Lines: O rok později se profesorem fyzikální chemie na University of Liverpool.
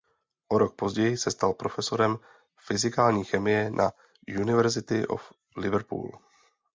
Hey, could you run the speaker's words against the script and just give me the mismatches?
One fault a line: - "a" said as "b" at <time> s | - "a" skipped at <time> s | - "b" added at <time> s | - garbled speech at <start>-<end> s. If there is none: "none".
- "stal" added at 1.3 s